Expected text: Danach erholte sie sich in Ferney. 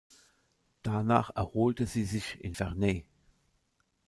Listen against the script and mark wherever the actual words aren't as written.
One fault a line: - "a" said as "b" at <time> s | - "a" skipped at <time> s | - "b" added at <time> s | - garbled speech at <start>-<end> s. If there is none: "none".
none